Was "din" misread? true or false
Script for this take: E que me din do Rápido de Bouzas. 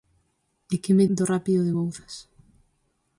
true